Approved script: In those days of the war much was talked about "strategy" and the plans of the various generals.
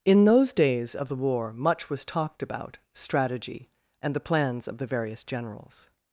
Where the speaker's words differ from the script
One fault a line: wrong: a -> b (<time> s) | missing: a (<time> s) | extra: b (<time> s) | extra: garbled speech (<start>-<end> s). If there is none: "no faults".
no faults